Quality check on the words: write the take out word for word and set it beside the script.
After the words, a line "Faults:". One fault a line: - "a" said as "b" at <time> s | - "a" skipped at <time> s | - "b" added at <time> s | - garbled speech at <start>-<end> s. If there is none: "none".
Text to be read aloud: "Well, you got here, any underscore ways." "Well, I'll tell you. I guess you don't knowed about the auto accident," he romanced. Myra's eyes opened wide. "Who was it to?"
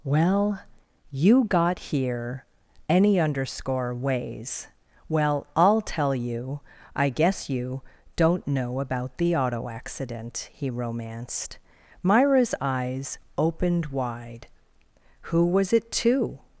"Well, you got here, any underscore ways." "Well, I'll tell you. I guess you don't know about the auto accident," he romanced. Myra's eyes opened wide. "Who was it to?"
Faults:
- "knowed" said as "know" at 8.5 s